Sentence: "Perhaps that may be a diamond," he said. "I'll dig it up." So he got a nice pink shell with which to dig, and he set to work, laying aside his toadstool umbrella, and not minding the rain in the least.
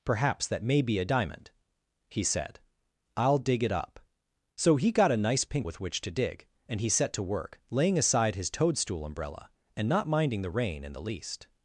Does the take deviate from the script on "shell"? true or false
true